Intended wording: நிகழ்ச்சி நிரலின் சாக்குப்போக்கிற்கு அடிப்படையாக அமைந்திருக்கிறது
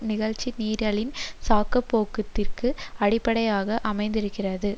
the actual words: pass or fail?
pass